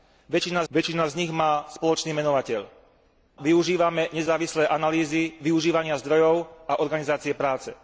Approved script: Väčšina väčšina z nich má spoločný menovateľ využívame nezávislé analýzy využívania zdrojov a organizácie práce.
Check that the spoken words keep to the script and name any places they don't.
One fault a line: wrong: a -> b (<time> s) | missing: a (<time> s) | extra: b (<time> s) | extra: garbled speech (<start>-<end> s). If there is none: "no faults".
no faults